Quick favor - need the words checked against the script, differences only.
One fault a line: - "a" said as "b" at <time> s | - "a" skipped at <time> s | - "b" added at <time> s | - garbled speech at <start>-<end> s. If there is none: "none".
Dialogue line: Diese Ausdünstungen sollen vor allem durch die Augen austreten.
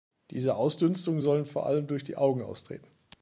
none